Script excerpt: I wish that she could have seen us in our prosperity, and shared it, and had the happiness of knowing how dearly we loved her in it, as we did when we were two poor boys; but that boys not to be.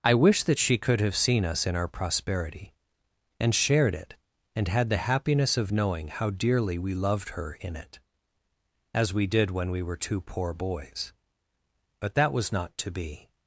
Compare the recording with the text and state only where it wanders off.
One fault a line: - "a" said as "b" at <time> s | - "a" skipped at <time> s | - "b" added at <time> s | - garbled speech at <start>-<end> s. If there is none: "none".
- "boys" said as "was" at 12.3 s